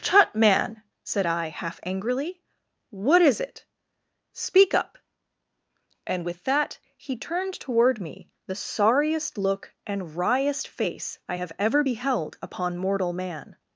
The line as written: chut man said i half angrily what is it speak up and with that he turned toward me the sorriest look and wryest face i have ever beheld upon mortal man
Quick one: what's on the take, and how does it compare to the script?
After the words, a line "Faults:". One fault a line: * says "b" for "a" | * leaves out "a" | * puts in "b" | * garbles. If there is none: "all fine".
chut man said i half angrily what is it speak up and with that he turned toward me the sorriest look and wryest face i have ever beheld upon mortal man
Faults:
all fine